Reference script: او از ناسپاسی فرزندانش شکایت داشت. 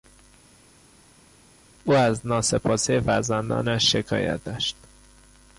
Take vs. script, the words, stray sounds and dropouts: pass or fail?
pass